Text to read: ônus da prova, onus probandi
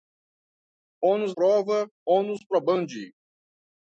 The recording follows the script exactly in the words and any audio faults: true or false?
false